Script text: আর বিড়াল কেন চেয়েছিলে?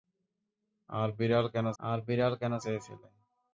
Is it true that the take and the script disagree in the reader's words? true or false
true